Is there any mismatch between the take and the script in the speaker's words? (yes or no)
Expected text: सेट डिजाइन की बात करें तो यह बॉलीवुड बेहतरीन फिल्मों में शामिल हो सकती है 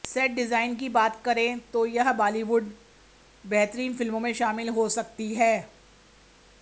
no